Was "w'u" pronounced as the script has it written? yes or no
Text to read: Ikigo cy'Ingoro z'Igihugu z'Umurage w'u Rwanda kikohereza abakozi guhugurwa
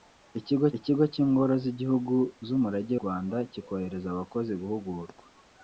no